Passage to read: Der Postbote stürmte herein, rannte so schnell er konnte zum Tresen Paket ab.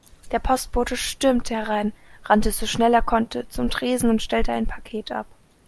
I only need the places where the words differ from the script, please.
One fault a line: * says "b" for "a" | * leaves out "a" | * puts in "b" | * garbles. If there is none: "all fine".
* puts in "und stellte ein"